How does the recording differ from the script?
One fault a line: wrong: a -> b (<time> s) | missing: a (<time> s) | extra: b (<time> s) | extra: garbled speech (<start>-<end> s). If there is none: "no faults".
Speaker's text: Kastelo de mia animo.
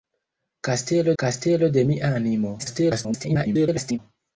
extra: kastelo (1.2 s)
extra: garbled speech (2.6-4.0 s)